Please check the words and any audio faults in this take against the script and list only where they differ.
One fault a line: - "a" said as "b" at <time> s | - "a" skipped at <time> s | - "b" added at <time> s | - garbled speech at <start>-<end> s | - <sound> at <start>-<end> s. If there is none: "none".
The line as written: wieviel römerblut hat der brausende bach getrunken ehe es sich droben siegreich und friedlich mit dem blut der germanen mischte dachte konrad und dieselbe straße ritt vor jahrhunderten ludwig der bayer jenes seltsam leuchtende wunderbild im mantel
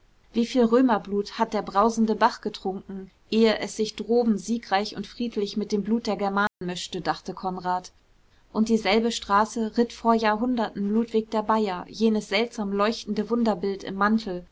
- dropout at 6.5-6.6 s